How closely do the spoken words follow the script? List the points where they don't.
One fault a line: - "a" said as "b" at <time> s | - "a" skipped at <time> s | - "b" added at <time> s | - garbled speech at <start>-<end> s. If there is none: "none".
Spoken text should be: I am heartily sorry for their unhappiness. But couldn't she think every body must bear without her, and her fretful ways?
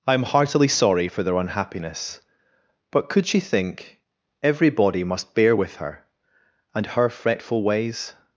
- "couldn't" said as "could" at 3.1 s
- "without" said as "with" at 5.5 s